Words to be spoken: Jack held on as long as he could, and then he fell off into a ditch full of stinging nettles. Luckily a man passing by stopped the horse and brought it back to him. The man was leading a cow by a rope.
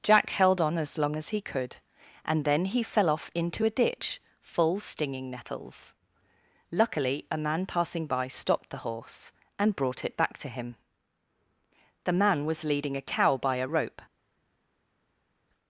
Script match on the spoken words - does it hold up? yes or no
no